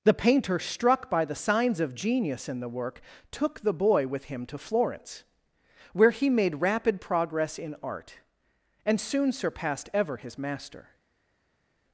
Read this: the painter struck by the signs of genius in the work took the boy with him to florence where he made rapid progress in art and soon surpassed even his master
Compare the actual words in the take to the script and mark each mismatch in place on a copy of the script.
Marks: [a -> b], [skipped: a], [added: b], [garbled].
the painter struck by the signs of genius in the work took the boy with him to florence where he made rapid progress in art and soon surpassed [even -> ever] his master